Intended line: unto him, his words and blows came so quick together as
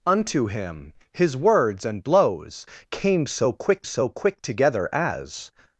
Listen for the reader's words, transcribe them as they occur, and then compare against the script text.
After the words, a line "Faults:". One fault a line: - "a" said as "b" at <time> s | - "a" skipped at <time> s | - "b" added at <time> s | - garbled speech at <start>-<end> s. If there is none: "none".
unto him, his words and blows came so quick so quick together as
Faults:
- "so quick" added at 3.8 s